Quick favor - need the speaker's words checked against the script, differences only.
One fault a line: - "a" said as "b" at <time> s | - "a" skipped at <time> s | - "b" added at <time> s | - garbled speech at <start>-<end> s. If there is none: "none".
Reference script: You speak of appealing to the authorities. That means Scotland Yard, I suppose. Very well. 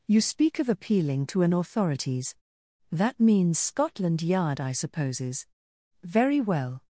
- "the" said as "an" at 1.4 s
- "suppose" said as "supposes" at 4.7 s